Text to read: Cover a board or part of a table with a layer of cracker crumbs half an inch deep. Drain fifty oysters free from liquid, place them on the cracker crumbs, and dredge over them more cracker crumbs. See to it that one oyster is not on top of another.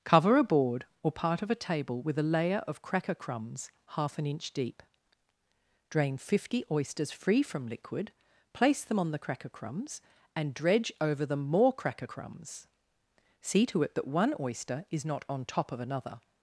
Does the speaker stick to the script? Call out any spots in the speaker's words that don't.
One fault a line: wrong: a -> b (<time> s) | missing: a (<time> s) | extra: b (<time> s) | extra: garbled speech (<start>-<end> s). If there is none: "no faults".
no faults